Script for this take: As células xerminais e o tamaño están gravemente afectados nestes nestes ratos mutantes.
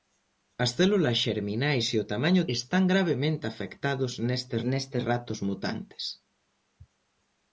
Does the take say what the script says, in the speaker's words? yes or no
yes